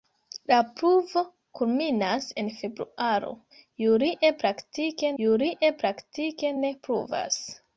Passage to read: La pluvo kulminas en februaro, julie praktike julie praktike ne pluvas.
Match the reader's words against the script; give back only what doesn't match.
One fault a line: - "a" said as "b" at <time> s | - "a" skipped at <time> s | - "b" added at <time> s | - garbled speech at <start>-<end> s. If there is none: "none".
none